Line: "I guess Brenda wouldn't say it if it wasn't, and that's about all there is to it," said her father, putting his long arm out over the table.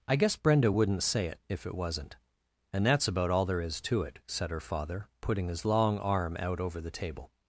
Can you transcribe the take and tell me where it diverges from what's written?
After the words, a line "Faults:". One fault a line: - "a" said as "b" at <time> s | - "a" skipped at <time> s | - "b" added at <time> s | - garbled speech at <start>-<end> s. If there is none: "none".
"I guess Brenda wouldn't say it if it wasn't, and that's about all there is to it," said her father, putting his long arm out over the table.
Faults:
none